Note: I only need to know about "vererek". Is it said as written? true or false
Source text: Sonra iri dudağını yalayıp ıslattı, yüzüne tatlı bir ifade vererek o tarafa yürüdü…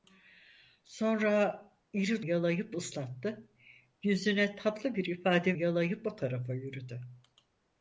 false